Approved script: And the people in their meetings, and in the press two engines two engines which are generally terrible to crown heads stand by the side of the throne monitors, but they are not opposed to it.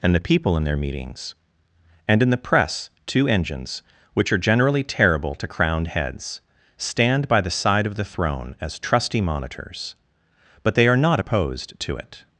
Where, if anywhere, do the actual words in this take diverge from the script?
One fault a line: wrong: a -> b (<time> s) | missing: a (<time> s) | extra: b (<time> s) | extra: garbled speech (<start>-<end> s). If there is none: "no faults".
missing: two engines (3.8 s)
wrong: crown -> crowned (5.5 s)
extra: as trusty (8.6 s)